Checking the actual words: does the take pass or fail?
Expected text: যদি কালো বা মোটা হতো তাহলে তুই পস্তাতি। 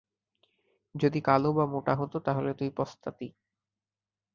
pass